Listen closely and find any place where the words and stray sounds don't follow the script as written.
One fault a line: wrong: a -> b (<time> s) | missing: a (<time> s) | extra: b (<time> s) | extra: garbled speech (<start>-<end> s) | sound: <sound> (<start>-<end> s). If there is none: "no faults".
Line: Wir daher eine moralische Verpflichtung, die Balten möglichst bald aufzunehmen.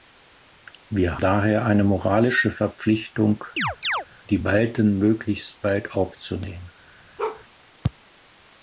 sound: chirp (3.6-4.1 s)
sound: bark (7.2-7.4 s)